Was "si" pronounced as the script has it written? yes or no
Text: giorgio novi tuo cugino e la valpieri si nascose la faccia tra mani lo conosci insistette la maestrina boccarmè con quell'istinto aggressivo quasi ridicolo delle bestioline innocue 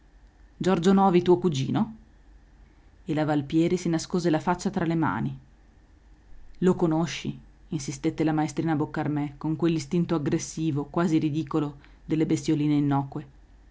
yes